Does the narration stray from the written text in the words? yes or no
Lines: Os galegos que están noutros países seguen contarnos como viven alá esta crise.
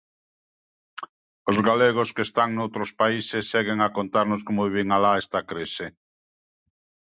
yes